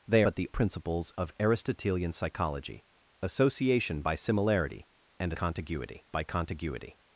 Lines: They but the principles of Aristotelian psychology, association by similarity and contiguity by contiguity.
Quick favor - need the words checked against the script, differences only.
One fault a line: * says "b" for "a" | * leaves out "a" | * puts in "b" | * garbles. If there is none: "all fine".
all fine